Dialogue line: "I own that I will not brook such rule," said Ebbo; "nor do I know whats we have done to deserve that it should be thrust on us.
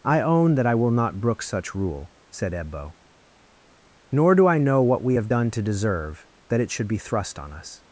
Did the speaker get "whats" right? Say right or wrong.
wrong